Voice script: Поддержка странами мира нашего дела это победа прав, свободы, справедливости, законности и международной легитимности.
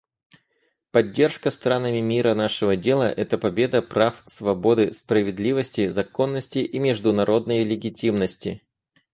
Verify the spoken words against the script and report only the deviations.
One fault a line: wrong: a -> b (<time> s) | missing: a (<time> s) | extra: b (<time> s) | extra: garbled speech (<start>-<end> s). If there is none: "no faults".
no faults